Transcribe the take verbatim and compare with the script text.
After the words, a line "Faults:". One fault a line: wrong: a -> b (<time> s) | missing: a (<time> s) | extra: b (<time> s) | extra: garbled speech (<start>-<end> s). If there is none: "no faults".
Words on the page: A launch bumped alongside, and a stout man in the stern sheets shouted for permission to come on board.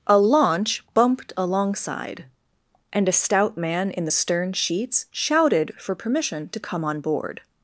A launch bumped alongside, and a stout man in the stern sheets shouted for permission to come on board.
Faults:
no faults